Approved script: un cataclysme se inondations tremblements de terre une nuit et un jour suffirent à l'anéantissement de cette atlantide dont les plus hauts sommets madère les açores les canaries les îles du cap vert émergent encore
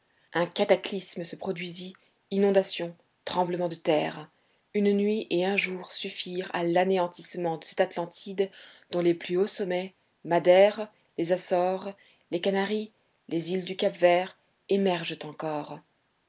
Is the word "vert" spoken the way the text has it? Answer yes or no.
yes